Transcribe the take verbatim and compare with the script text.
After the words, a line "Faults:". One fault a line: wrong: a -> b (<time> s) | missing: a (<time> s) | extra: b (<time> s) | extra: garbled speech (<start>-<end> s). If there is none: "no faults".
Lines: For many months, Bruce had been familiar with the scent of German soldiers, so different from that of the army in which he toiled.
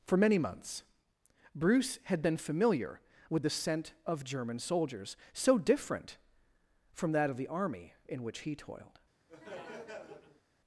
For many months, Bruce had been familiar with the scent of German soldiers, so different from that of the army in which he toiled.
Faults:
no faults